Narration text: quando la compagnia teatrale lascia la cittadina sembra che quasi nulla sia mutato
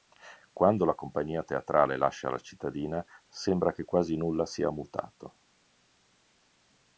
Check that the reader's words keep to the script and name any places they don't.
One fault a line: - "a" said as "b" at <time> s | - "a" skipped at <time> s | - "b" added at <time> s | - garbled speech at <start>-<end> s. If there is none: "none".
none